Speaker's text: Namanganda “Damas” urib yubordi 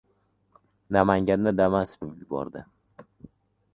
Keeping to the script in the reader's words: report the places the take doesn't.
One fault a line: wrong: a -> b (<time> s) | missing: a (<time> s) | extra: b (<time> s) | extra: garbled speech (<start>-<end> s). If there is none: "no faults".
no faults